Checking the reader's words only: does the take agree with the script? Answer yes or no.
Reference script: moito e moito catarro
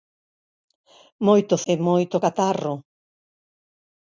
yes